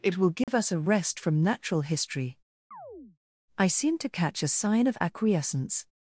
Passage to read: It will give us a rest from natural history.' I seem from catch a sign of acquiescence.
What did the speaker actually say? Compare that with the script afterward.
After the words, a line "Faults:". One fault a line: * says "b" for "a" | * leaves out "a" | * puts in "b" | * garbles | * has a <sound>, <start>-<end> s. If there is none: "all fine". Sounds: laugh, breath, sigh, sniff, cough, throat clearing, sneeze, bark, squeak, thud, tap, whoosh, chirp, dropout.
It will give us a rest from natural history.' I seem to catch a sign of acquiescence.
Faults:
* has a dropout, 0.4-0.5 s
* has a chirp, 2.7-3.2 s
* says "to" for "from"